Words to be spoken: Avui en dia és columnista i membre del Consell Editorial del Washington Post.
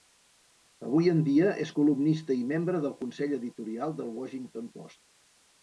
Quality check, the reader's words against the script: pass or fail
pass